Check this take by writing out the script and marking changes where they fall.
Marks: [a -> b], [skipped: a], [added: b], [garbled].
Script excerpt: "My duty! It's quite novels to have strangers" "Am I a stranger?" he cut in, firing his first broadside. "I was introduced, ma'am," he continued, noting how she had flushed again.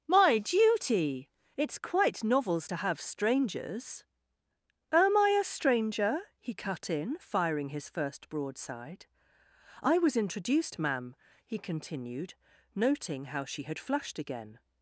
"My duty! It's quite novels to have strangers" "Am I a stranger?" he cut in, firing his first broadside. "I was introduced, ma'am," he continued, noting how she had flushed again.